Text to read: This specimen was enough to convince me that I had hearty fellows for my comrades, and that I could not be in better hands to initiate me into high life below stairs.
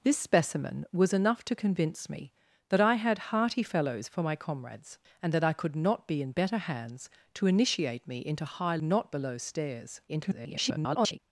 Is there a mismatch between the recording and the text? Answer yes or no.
yes